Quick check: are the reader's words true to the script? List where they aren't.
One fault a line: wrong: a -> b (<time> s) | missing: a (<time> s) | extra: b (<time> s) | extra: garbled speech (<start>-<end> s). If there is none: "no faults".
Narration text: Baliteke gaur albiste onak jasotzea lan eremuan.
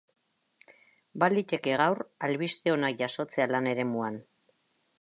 no faults